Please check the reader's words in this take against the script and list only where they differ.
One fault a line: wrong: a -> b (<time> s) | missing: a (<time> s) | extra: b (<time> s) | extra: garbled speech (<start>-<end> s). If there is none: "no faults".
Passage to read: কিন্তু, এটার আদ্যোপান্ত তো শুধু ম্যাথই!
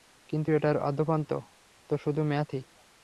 no faults